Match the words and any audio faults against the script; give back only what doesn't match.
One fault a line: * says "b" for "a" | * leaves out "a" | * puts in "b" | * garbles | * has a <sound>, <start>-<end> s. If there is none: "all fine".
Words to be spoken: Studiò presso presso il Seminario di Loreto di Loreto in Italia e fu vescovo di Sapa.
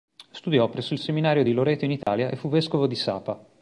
* leaves out "presso"
* leaves out "di Loreto"
* has a dropout, 2.0-2.1 s